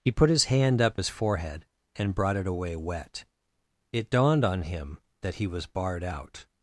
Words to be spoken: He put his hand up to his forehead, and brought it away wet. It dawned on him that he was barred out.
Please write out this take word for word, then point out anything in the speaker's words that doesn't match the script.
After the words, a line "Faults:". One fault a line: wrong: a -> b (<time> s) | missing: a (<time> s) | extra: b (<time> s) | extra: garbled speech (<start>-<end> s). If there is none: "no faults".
He put his hand up his forehead, and brought it away wet. It dawned on him that he was barred out.
Faults:
missing: to (1.0 s)